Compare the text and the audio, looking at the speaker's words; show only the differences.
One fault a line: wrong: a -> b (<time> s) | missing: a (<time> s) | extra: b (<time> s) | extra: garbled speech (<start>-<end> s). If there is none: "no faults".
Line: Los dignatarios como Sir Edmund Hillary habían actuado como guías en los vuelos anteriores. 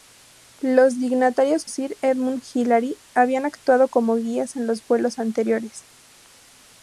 missing: como (1.7 s)